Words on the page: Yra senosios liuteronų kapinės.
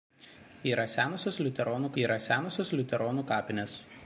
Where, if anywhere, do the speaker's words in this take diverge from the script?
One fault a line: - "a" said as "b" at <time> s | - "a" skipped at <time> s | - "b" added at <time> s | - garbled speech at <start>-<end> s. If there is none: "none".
- "yra senosios liuteronų" added at 2.0 s